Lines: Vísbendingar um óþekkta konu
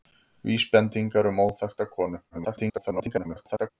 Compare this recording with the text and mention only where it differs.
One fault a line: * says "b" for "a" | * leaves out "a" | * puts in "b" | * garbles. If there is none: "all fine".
* garbles